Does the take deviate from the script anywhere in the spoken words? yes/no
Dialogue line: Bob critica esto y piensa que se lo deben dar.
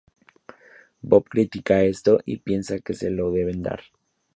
no